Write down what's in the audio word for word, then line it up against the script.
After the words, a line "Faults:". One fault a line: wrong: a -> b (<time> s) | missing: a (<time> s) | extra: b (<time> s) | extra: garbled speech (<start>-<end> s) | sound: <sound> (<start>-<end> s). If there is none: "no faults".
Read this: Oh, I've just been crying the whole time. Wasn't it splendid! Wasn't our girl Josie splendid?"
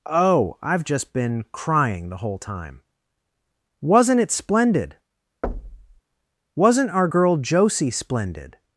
Oh, I've just been crying the whole time. Wasn't it splendid! Wasn't our girl Josie splendid?"
Faults:
sound: thud (5.4-6.0 s)